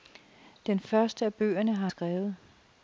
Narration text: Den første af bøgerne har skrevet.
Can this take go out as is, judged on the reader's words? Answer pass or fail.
pass